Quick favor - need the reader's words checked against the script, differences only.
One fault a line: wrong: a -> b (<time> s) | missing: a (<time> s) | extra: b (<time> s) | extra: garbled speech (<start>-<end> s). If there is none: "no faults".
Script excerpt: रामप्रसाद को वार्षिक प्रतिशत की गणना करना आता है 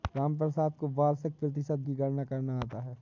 no faults